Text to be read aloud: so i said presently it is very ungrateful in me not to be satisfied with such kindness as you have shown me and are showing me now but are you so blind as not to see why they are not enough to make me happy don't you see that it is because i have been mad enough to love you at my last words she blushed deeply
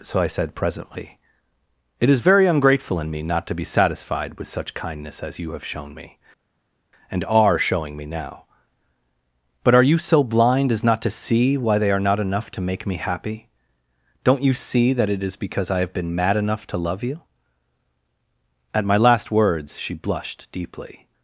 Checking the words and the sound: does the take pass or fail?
pass